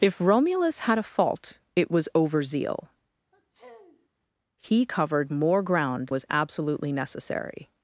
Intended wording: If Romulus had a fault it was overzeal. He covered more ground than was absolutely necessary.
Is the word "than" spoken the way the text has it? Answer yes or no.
no